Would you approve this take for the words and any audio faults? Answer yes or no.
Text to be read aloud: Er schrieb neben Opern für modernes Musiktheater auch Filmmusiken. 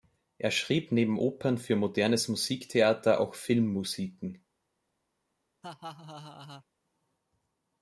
no